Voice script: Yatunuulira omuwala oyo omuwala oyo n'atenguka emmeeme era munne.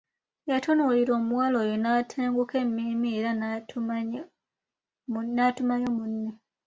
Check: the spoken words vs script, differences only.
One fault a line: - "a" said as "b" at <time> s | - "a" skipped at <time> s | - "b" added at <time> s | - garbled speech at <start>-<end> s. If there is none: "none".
- "omuwala oyo" skipped at 1.8 s
- "n'atumayo" added at 5.3 s